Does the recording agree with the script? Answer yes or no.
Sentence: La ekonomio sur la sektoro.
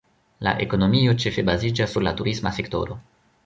no